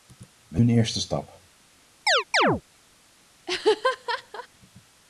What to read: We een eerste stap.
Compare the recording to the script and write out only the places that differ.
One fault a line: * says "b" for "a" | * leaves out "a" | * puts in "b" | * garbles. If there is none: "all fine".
all fine